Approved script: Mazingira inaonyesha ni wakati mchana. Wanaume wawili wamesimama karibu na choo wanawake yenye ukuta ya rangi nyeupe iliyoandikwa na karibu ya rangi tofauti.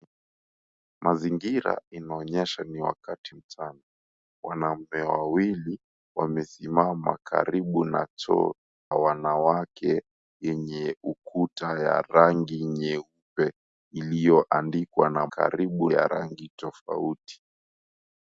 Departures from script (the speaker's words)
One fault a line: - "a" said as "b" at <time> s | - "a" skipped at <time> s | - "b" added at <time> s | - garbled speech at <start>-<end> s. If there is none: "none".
none